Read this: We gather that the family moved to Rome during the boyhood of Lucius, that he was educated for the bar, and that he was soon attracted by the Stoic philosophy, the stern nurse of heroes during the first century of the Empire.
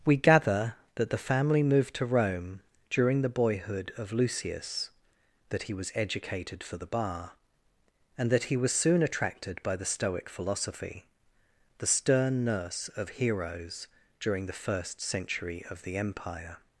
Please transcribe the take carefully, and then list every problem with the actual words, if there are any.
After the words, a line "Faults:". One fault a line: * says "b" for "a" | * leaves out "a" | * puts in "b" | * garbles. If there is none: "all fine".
We gather that the family moved to Rome during the boyhood of Lucius, that he was educated for the bar, and that he was soon attracted by the Stoic philosophy, the stern nurse of heroes during the first century of the Empire.
Faults:
all fine